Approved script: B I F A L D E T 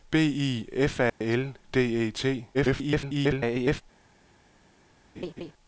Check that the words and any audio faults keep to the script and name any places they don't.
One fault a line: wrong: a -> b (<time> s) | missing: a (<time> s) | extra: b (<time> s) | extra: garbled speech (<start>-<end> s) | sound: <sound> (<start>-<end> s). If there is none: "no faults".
sound: dropout (1.1-1.2 s)
extra: garbled speech (2.5-3.8 s)
sound: laugh (5.2-5.5 s)